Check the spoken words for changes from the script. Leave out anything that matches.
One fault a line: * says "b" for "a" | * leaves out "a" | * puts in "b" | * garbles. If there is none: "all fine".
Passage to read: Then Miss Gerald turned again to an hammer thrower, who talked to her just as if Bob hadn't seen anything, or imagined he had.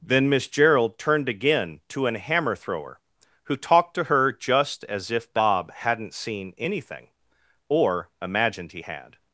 all fine